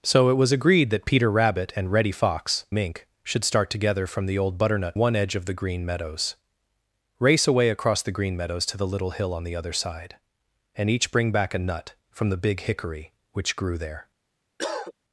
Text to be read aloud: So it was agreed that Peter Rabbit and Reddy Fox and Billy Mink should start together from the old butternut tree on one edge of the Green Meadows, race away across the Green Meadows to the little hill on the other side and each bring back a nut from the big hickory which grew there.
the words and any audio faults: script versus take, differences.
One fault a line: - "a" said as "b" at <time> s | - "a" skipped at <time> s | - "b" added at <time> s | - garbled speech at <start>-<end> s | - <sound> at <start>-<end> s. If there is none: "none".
- "and Billy" skipped at 2.6 s
- "tree on" skipped at 5.0 s
- cough at 14.6-14.9 s